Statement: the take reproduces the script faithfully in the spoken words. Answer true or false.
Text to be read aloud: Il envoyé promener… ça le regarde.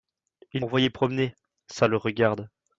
true